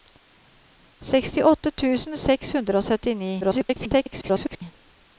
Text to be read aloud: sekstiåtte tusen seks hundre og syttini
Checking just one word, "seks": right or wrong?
right